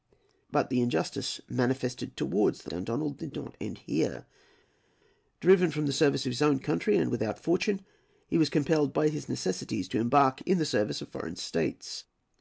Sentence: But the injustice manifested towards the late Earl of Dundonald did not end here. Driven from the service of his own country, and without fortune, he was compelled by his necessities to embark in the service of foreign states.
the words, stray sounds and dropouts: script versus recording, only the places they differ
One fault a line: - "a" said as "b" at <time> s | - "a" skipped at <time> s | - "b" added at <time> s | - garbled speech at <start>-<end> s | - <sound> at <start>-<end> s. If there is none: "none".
- "late Earl of" skipped at 2.7 s